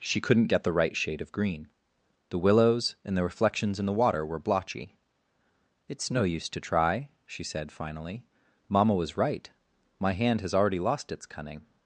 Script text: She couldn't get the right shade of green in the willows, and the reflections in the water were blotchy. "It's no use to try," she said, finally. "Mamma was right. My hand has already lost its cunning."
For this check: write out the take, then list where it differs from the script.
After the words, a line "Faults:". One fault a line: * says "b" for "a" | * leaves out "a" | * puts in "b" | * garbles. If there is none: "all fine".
She couldn't get the right shade of green the willows, and the reflections in the water were blotchy. "It's no use to try," she said, finally. "Mamma was right. My hand has already lost its cunning."
Faults:
* leaves out "in"